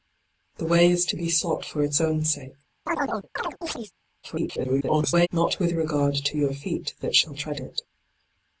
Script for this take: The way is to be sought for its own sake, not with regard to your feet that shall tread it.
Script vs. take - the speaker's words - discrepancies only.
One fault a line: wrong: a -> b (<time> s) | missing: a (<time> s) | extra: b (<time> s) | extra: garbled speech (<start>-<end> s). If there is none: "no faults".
extra: garbled speech (4.2-5.3 s)